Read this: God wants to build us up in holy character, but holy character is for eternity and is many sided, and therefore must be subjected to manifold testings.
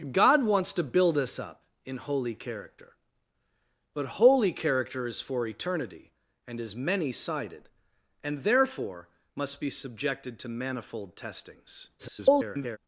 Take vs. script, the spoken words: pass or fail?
fail